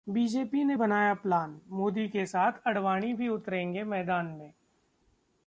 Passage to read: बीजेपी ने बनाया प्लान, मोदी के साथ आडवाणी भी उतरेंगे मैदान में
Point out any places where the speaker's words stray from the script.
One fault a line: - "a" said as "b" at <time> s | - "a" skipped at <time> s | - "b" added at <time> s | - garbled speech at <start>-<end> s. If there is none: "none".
none